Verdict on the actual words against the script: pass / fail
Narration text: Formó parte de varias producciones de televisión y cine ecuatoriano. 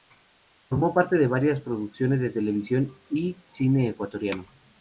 pass